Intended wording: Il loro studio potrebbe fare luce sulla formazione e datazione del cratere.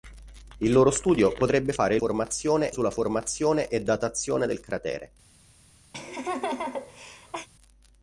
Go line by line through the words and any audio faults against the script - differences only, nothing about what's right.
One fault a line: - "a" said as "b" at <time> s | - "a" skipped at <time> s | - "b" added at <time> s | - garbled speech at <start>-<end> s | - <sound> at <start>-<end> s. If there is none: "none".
- "luce" said as "formazione" at 2.0 s
- laugh at 5.9-7.5 s